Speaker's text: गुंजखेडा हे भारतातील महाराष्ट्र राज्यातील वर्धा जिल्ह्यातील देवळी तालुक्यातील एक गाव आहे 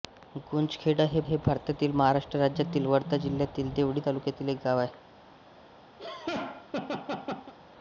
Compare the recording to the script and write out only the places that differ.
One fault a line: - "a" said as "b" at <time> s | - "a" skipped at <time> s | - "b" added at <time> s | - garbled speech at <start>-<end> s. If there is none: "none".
- "हे" added at 1.2 s